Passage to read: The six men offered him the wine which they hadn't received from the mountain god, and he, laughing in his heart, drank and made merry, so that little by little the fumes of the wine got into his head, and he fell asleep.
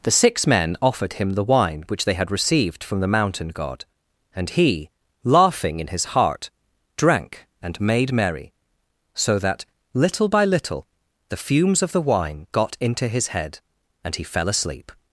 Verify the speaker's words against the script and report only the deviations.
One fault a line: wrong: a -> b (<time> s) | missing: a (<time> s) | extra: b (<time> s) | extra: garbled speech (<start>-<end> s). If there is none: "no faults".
wrong: hadn't -> had (2.1 s)